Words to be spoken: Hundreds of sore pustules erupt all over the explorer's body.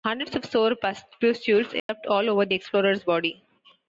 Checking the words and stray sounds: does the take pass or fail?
fail